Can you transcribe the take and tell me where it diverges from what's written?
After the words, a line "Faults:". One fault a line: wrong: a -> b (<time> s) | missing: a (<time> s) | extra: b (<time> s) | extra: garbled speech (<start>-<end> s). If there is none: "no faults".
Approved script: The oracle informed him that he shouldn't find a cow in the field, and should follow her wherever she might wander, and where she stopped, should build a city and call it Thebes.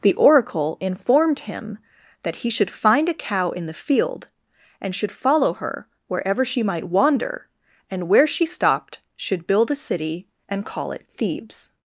The oracle informed him that he should find a cow in the field, and should follow her wherever she might wander, and where she stopped, should build a city and call it Thebes.
Faults:
wrong: shouldn't -> should (2.5 s)